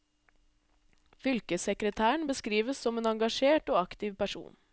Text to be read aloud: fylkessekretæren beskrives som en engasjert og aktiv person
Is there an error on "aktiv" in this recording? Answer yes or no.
no